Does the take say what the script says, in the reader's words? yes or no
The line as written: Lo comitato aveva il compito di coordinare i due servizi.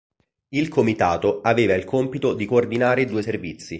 no